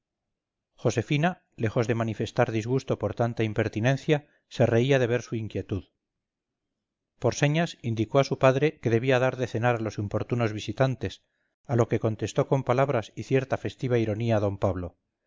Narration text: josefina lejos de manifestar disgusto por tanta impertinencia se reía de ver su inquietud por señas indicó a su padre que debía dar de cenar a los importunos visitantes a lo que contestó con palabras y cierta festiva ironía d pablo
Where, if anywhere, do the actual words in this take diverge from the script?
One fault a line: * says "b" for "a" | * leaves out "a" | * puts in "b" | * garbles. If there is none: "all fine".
all fine